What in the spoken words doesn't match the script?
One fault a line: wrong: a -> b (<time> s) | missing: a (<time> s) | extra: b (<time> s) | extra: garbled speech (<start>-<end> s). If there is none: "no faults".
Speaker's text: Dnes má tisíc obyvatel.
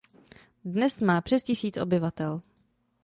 extra: přes (1.2 s)